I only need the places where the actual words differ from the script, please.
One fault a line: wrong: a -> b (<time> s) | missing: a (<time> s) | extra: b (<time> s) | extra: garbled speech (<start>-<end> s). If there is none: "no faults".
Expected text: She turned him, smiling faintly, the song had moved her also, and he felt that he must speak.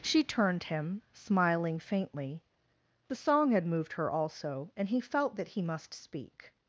no faults